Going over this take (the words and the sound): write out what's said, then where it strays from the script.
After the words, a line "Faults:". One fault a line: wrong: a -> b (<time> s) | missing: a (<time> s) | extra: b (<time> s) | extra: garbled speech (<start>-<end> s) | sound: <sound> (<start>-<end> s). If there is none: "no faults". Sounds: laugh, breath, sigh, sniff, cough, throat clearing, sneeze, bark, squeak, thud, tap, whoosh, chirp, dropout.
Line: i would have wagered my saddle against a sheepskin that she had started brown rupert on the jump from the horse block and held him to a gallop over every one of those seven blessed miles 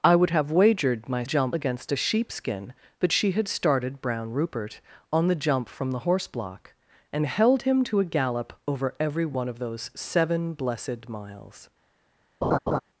i would have wagered my jump against a sheepskin that she had started brown rupert on the jump from the horse block and held him to a gallop over every one of those seven blessed miles
Faults:
wrong: saddle -> jump (1.2 s)
sound: laugh (12.4-12.8 s)